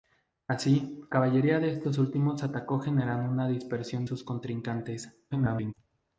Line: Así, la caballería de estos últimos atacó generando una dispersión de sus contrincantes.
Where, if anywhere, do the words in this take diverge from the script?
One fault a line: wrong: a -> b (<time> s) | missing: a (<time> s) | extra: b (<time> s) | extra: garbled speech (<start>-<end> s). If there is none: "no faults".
missing: la (1.0 s)
missing: de (4.1 s)
extra: garbled speech (5.3-5.7 s)